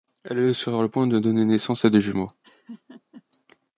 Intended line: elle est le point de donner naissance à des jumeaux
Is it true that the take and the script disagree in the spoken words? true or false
true